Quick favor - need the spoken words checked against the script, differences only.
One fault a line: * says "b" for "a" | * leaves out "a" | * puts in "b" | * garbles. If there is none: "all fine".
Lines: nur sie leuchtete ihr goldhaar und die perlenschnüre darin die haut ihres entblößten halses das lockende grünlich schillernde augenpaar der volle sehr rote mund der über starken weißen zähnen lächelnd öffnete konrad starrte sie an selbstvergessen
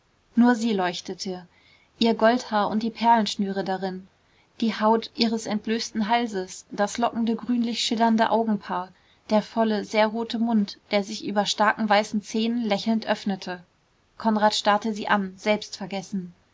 * puts in "sich"